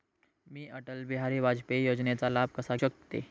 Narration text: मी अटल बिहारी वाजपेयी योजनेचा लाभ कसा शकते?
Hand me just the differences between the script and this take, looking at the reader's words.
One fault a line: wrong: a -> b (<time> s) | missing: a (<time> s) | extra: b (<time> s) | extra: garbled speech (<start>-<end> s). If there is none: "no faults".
no faults